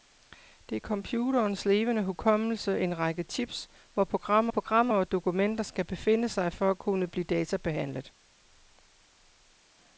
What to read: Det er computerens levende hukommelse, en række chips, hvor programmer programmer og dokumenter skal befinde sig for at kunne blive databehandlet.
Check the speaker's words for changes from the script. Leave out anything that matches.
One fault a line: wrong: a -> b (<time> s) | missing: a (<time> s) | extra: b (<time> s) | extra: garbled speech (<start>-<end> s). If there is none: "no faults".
no faults